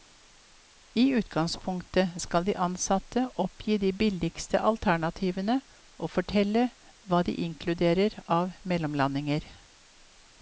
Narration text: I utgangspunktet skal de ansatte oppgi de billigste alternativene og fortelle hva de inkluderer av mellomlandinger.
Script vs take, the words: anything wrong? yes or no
no